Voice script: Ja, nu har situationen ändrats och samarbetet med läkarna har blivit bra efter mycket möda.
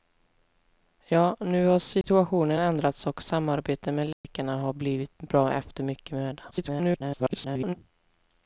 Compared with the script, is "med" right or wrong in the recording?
right